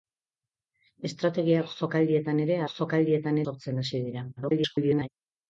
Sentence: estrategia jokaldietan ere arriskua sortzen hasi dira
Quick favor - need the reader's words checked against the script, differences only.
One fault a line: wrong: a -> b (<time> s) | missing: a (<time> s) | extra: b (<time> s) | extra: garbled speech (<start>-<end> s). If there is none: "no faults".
wrong: arriskua -> jokaldietan (2.7 s)
extra: garbled speech (4.4-5.1 s)